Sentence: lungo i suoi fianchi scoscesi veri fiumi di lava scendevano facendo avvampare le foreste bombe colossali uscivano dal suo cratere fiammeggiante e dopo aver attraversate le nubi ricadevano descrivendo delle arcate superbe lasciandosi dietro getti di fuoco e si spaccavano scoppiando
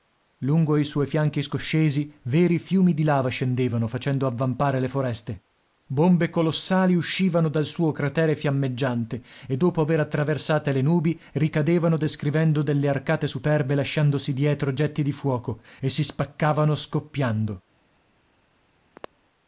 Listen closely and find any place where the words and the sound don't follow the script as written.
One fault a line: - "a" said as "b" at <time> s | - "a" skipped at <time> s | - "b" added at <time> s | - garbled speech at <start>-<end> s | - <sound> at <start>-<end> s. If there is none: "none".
- throat clearing at 19.0-19.1 s